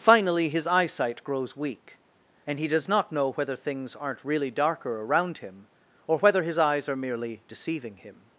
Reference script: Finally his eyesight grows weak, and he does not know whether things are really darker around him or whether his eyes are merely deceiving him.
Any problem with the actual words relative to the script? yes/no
yes